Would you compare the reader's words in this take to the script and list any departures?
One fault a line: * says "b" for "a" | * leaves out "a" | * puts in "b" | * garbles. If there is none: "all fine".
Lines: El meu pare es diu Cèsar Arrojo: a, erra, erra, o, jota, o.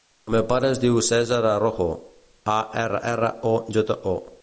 all fine